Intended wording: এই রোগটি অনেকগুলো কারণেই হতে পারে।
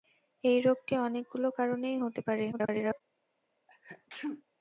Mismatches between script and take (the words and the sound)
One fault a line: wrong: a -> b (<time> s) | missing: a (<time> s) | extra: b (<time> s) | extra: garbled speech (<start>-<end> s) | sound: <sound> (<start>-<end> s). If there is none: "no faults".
extra: garbled speech (2.5-3.0 s)
sound: sneeze (3.7-4.4 s)